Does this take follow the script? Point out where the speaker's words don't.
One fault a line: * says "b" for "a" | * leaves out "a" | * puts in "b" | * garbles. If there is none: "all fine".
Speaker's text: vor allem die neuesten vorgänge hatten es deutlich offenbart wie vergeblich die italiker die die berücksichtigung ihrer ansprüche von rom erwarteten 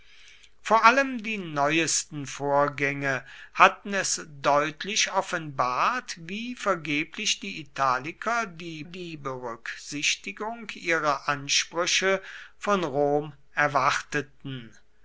all fine